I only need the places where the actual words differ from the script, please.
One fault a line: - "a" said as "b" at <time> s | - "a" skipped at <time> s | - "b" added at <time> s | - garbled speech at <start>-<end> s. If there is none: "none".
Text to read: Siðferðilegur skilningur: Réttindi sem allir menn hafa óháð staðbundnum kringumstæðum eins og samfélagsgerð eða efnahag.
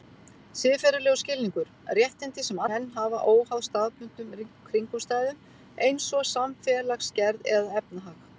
- "allir" skipped at 2.6 s